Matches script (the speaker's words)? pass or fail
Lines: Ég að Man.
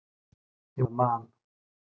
pass